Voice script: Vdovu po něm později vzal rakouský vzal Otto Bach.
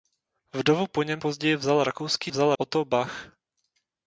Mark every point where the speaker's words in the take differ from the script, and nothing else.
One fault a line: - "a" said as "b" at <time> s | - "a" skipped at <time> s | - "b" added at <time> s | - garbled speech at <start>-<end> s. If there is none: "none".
none